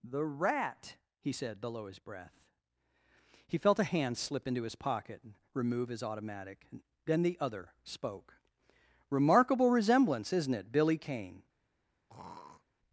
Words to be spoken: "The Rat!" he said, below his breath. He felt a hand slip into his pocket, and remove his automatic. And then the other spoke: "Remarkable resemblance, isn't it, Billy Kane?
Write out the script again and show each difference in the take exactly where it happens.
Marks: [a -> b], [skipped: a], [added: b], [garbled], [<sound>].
"The Rat!" he said, below his breath. He felt a hand slip into his pocket, and remove his automatic. [skipped: And] then the other spoke: "Remarkable resemblance, isn't it, Billy Kane? [throat clearing]